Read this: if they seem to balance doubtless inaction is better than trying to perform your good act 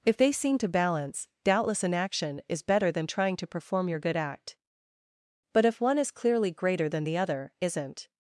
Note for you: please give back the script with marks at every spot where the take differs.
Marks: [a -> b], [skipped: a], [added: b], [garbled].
if they seem to balance doubtless inaction is better than trying to perform your good act [added: but if one is clearly greater than the other isn't]